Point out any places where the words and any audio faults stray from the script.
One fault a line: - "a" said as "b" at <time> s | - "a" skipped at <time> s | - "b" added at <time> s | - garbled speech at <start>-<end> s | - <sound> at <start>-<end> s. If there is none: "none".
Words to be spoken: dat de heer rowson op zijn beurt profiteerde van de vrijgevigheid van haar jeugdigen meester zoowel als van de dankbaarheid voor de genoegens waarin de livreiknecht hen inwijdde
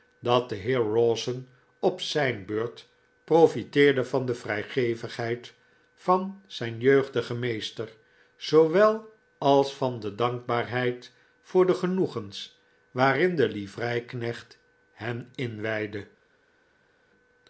- "haar" said as "zijn" at 6.5 s